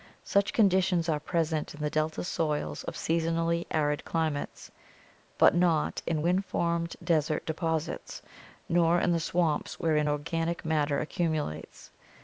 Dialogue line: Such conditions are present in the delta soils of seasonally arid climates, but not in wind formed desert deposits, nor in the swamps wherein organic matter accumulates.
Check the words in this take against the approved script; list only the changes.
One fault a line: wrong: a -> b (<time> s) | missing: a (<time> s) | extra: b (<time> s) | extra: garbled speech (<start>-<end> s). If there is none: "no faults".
no faults